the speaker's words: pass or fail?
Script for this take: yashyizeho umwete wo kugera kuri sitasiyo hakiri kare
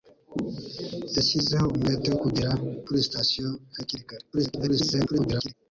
fail